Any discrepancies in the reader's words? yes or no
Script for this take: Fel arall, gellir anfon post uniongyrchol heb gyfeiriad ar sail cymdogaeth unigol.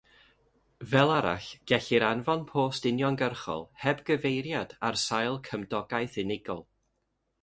no